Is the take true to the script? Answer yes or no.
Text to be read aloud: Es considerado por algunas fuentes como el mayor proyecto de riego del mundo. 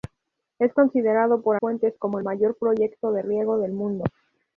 no